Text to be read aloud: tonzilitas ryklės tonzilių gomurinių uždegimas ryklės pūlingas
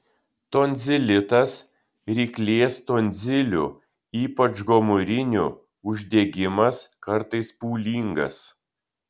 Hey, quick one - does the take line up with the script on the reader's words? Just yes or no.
no